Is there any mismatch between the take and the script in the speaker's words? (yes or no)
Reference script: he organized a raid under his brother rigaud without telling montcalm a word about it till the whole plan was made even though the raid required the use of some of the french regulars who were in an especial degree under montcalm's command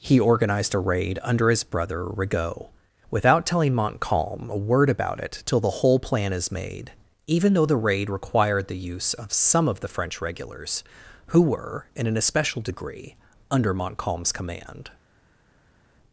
yes